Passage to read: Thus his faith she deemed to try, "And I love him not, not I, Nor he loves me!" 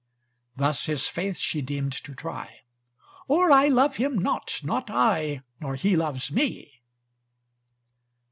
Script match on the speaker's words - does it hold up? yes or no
no